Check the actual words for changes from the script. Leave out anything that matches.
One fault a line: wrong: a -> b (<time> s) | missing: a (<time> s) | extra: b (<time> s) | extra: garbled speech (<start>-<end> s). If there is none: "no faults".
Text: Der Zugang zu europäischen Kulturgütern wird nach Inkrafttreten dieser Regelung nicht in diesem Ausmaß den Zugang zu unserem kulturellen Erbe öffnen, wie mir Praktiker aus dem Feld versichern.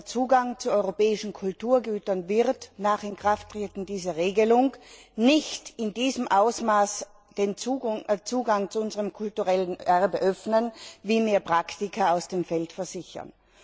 no faults